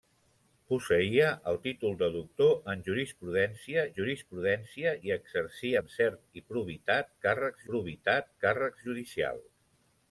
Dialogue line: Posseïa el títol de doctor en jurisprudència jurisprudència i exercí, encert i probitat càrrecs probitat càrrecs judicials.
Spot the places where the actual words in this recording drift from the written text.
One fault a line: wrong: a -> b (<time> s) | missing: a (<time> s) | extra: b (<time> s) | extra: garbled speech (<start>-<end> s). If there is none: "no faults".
no faults